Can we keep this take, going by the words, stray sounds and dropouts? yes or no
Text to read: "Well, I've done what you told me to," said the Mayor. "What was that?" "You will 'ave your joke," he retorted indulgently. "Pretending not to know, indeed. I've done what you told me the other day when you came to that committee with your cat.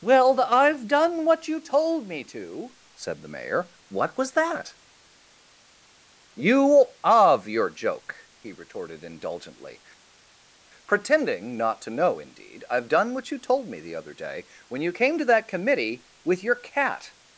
no